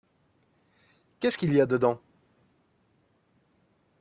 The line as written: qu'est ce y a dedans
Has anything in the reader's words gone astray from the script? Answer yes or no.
yes